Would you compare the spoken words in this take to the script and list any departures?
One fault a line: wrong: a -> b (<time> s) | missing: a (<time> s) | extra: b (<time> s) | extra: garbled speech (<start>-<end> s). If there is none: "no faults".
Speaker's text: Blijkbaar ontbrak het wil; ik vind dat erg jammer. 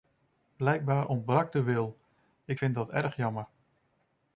wrong: het -> de (1.5 s)